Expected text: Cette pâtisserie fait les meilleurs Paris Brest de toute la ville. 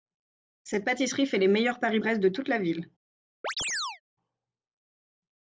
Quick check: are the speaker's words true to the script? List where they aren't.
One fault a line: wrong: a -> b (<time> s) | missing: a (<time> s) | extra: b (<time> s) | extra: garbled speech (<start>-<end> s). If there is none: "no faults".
no faults